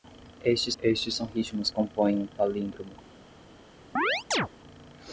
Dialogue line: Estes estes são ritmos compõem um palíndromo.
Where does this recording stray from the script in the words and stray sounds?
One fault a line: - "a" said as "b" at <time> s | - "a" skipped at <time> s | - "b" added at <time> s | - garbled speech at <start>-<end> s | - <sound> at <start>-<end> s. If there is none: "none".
- chirp at 4.0-4.5 s